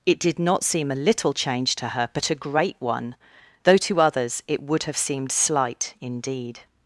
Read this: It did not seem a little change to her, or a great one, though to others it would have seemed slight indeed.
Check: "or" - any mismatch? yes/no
yes